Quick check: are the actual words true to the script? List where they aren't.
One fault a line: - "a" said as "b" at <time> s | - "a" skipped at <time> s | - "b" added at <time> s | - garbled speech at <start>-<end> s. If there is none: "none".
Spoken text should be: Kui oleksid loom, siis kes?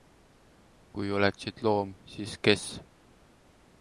none